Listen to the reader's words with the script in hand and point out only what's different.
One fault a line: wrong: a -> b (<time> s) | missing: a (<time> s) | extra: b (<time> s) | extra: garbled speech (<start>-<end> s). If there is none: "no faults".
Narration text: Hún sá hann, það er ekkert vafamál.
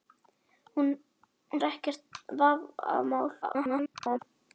missing: sá hann það (0.9 s)
extra: garbled speech (3.4-4.2 s)